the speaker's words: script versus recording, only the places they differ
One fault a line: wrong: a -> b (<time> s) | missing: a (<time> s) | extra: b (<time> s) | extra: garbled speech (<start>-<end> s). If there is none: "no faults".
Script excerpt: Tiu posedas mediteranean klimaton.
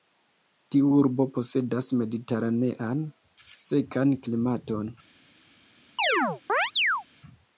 extra: urbo (1.0 s)
extra: sekan (3.7 s)